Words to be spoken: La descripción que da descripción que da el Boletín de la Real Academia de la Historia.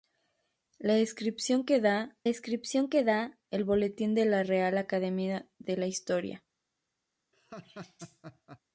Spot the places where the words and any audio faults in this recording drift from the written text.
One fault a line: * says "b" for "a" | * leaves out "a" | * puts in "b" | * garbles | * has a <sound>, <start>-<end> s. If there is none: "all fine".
* has a laugh, 7.3-8.6 s